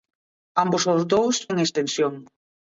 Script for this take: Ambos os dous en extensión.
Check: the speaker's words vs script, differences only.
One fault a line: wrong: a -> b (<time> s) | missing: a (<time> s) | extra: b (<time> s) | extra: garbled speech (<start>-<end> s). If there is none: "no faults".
no faults